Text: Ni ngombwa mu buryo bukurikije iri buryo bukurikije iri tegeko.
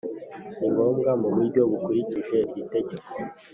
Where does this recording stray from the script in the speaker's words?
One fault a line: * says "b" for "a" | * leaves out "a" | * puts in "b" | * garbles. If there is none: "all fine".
* leaves out "buryo bukurikije iri"